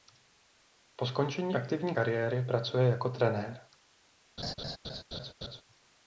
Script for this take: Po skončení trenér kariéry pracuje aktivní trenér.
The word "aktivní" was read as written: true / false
false